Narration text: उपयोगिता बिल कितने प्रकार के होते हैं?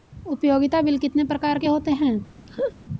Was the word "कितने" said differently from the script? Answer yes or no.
no